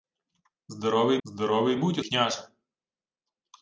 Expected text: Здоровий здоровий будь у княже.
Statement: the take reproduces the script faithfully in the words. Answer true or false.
true